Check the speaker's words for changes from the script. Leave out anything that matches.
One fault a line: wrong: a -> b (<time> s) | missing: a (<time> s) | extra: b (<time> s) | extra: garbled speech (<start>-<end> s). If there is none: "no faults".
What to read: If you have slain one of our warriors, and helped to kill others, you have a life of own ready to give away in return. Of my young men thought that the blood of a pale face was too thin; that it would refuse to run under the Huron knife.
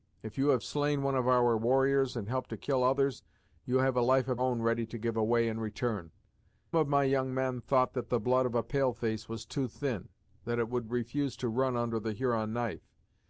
no faults